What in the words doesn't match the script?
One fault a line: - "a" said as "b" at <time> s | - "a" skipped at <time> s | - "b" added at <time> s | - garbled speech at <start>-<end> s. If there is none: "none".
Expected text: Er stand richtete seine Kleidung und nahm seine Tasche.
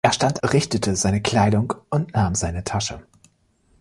none